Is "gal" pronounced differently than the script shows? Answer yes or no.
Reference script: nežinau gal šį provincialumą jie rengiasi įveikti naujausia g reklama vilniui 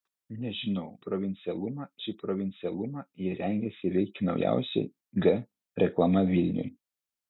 yes